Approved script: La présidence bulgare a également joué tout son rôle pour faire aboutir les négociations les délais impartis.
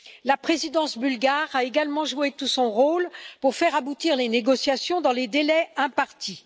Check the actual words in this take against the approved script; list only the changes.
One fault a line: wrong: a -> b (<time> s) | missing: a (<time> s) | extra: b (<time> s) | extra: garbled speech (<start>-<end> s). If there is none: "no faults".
extra: dans (5.0 s)